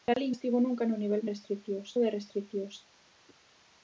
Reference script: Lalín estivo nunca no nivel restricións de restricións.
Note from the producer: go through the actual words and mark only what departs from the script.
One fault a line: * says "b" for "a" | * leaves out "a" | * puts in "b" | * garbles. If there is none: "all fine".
all fine